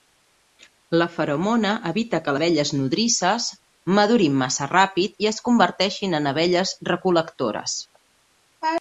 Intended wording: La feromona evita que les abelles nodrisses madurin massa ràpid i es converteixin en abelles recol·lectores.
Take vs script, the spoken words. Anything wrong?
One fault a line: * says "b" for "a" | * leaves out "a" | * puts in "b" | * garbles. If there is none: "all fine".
* leaves out "les"